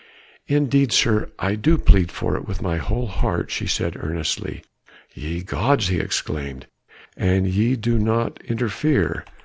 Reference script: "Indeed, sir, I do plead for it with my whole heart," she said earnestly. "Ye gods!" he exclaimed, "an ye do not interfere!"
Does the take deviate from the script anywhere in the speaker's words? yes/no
no